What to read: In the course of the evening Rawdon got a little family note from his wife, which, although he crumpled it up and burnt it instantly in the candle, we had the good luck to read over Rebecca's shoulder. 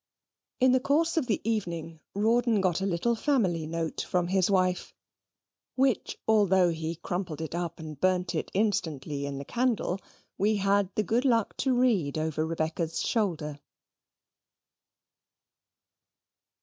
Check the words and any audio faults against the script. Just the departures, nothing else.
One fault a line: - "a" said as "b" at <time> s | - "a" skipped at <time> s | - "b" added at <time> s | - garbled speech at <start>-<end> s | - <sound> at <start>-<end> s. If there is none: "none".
none